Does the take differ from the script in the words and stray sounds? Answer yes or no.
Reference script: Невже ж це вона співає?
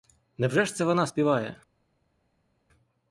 no